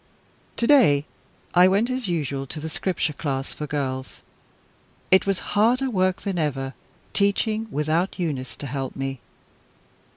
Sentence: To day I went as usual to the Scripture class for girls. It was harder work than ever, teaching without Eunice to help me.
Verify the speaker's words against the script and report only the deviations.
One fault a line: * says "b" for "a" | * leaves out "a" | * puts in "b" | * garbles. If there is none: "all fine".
all fine